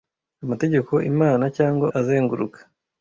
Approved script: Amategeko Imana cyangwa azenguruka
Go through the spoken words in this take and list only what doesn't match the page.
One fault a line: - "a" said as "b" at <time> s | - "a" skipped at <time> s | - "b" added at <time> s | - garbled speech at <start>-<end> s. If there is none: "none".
none